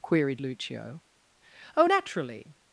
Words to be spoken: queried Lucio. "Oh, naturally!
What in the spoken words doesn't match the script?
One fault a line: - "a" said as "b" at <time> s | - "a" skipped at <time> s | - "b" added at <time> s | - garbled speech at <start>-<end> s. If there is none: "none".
none